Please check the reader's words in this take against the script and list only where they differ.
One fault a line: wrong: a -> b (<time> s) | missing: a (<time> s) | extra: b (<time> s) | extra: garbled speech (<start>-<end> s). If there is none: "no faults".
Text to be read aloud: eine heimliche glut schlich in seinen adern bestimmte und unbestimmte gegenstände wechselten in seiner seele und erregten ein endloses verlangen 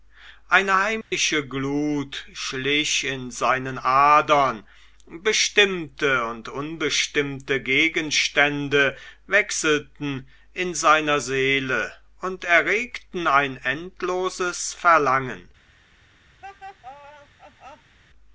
no faults